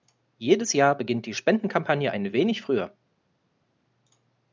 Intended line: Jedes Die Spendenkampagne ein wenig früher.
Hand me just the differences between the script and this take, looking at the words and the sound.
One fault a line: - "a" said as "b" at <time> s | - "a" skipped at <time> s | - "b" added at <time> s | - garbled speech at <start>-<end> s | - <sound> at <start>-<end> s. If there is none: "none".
- "Jahr beginnt" added at 0.7 s